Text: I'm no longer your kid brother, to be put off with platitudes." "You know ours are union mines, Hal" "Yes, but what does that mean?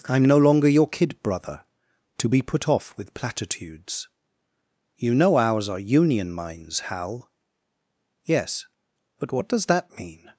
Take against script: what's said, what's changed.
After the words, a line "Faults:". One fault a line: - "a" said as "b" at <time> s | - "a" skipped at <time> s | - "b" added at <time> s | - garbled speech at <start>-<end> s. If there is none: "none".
I'm no longer your kid brother, to be put off with platitudes." "You know ours are union mines, Hal" "Yes, but what does that mean?
Faults:
none